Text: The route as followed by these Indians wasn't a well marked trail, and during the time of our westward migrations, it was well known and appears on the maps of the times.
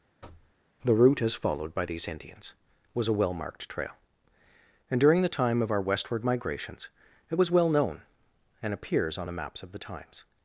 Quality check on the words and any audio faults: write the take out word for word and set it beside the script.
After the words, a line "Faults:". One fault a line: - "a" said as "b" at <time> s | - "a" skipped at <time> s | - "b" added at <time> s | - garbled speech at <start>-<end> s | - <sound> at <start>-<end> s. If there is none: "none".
The route as followed by these Indians was a well marked trail, and during the time of our westward migrations, it was well known and appears on the maps of the times.
Faults:
- thud at 0.2-0.5 s
- "wasn't" said as "was" at 3.0 s